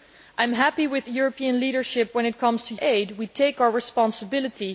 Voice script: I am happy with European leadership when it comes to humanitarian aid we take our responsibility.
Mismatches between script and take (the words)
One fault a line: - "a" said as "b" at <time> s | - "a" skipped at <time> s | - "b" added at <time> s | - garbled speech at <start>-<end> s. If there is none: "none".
- "humanitarian" skipped at 2.8 s